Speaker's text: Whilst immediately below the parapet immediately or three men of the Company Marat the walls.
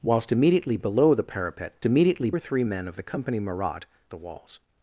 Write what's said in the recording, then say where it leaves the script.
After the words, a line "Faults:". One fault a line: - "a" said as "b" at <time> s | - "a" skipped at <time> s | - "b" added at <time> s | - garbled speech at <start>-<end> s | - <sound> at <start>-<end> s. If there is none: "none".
Whilst immediately below the parapet immediately or three men of the Company Marat the walls.
Faults:
none